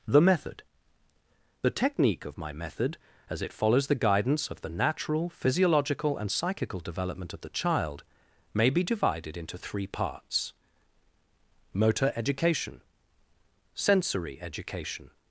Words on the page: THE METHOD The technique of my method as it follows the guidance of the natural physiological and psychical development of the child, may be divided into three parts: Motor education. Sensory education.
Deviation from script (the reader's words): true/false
false